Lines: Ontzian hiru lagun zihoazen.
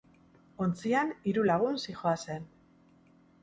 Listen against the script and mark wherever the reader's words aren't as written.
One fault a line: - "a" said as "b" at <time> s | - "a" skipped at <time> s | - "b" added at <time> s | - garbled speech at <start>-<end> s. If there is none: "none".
none